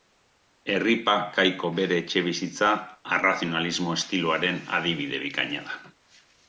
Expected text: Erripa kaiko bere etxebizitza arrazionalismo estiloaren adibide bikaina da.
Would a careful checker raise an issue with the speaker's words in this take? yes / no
no